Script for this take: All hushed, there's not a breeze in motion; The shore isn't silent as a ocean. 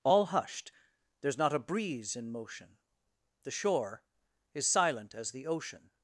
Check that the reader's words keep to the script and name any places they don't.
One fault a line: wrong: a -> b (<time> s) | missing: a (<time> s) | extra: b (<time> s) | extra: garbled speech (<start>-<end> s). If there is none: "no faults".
wrong: isn't -> is (4.5 s)
wrong: a -> the (5.3 s)